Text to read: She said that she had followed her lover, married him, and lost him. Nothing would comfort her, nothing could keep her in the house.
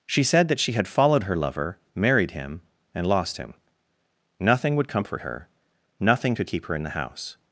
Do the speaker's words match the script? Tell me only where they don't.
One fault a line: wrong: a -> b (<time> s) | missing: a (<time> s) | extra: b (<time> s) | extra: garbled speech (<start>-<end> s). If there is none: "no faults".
no faults